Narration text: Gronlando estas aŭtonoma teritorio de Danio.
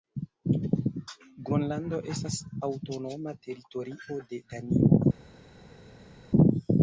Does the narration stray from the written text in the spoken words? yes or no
no